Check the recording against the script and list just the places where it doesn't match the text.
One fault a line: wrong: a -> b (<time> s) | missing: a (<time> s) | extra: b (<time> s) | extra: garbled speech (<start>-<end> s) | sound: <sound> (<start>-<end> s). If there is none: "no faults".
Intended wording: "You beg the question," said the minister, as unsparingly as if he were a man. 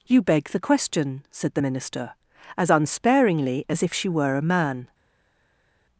wrong: he -> she (3.9 s)